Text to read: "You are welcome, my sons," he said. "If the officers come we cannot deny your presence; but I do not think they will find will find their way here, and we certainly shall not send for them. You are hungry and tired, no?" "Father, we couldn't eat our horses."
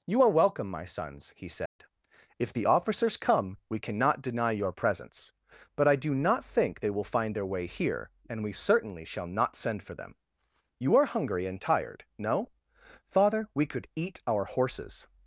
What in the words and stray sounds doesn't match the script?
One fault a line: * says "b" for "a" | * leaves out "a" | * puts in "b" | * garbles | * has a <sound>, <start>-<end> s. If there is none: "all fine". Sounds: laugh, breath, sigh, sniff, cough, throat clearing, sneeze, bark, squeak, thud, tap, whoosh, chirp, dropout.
* has a dropout, 1.7-1.8 s
* leaves out "will find"
* says "could" for "couldn't"